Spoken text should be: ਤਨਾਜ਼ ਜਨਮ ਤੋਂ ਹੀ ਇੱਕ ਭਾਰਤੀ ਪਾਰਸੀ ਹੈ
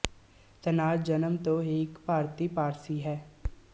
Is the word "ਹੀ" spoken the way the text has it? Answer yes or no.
yes